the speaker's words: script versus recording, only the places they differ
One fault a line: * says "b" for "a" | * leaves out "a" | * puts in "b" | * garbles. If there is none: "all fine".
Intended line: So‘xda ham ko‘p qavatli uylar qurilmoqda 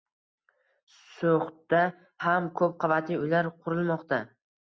all fine